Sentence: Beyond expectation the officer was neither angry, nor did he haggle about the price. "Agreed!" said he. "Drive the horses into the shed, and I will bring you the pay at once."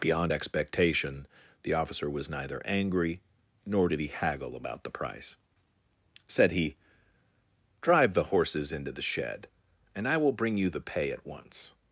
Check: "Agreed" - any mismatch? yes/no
yes